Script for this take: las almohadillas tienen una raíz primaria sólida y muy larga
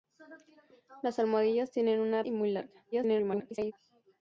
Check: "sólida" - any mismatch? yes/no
yes